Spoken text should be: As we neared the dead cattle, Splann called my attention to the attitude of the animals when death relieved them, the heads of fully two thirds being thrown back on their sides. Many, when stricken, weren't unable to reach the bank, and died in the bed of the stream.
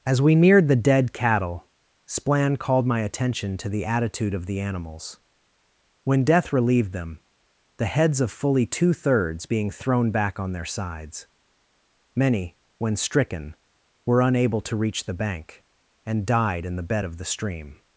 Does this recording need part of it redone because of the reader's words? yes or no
yes